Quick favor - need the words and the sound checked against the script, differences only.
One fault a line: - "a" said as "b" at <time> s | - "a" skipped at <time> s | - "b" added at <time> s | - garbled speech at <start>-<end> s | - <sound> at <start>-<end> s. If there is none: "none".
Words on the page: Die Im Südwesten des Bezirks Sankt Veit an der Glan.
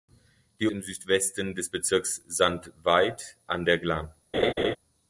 - laugh at 4.3-4.8 s